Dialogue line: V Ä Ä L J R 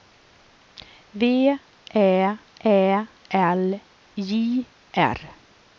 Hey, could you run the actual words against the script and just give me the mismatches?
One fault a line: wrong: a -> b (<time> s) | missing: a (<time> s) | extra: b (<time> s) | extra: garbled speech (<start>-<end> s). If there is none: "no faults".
no faults